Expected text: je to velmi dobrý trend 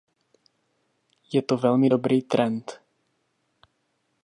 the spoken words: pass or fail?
pass